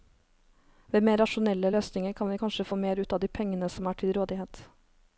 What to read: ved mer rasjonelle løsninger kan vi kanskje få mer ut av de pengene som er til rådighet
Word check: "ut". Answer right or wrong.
right